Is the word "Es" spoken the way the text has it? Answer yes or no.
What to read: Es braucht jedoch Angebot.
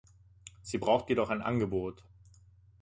no